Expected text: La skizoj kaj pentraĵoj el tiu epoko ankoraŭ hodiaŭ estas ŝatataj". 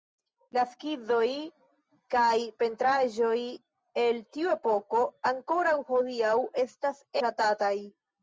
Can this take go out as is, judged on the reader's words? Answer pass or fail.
pass